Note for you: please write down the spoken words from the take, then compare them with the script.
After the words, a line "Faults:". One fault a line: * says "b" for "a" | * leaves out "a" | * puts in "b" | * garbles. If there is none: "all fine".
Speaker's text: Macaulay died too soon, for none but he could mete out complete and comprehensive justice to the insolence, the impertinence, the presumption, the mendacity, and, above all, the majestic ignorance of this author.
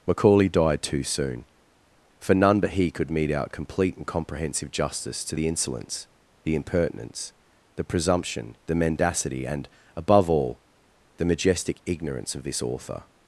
Macaulay died too soon, for none but he could mete out complete and comprehensive justice to the insolence, the impertinence, the presumption, the mendacity, and, above all, the majestic ignorance of this author.
Faults:
all fine